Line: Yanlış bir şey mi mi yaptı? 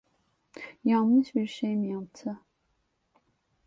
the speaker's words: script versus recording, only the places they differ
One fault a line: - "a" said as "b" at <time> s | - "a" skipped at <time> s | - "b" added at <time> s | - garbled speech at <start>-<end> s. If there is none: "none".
- "mi" skipped at 1.9 s